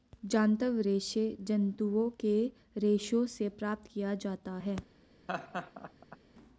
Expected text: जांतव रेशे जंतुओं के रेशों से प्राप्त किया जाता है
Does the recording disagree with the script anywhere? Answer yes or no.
no